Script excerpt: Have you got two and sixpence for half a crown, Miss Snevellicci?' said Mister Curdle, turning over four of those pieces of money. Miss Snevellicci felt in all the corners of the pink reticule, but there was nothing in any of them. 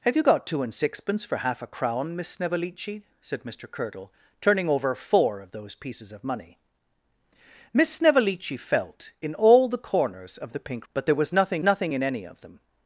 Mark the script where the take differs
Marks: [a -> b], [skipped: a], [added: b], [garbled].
Have you got two and sixpence for half a crown, Miss Snevellicci?' said Mister Curdle, turning over four of those pieces of money. Miss Snevellicci felt in all the corners of the pink [skipped: reticule,] but there was nothing [added: nothing] in any of them.